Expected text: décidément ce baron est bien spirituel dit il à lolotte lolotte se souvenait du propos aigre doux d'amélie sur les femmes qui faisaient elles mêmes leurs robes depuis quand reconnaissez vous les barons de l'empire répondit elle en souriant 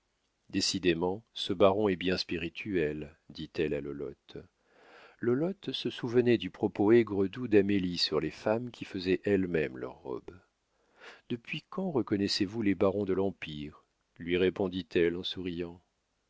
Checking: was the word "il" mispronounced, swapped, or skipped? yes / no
yes